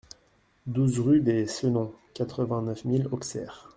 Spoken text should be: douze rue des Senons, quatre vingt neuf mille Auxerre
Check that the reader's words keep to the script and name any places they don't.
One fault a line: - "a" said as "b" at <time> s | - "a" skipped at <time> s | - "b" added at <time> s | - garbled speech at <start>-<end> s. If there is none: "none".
none